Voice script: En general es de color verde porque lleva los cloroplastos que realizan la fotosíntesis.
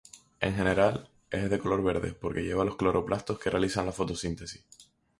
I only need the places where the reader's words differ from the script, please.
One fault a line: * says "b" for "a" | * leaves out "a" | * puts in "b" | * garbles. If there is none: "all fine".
all fine